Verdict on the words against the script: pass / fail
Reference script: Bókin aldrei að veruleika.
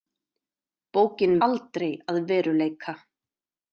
pass